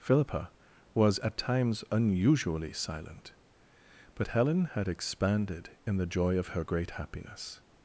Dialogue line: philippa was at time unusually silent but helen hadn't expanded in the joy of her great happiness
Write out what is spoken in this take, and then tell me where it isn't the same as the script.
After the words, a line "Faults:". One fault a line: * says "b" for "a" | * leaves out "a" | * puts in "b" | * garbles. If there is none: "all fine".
philippa was at times unusually silent but helen had expanded in the joy of her great happiness
Faults:
* says "times" for "time"
* says "had" for "hadn't"